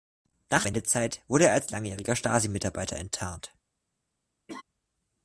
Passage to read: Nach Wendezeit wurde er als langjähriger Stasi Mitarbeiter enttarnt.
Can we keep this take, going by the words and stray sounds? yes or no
no